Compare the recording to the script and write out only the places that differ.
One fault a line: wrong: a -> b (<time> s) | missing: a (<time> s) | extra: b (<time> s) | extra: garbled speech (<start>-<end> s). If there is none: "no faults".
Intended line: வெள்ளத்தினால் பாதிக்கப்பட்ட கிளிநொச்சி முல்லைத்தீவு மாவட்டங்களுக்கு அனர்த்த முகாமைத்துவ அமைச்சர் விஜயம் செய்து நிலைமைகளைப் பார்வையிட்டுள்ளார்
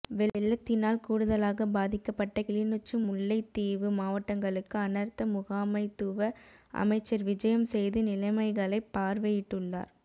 extra: கூடுதலாக (1.0 s)